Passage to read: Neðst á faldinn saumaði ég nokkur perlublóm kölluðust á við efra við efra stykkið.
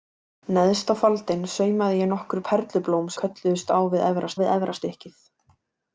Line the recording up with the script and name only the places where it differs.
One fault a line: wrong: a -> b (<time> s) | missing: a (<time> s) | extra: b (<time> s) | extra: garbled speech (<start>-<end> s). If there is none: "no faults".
no faults